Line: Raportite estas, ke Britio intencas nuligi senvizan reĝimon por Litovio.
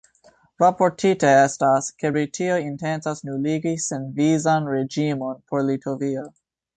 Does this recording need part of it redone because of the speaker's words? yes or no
no